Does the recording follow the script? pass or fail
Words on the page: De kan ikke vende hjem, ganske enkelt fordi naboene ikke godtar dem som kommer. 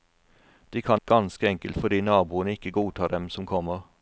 fail